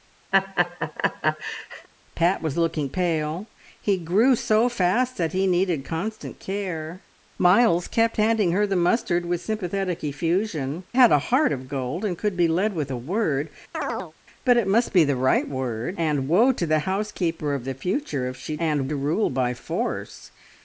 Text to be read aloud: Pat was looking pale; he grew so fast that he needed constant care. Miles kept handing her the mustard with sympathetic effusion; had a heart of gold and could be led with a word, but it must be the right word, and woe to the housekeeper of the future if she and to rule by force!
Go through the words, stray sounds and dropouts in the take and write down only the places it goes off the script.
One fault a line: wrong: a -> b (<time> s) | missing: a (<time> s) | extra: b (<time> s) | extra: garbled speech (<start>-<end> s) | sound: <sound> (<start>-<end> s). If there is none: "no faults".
sound: laugh (0.3-1.9 s)
sound: chirp (13.7-14.1 s)